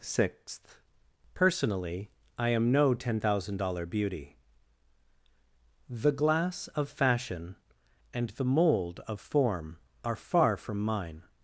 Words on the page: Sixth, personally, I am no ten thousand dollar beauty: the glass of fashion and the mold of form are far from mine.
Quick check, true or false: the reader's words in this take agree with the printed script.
true